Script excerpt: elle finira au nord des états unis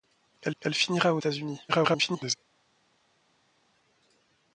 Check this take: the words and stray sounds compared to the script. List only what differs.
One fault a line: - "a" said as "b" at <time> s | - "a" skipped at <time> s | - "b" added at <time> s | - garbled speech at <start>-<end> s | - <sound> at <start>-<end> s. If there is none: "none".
- "elle" added at 0.6 s
- "nord des" skipped at 1.2 s
- garbled speech at 1.7-2.4 s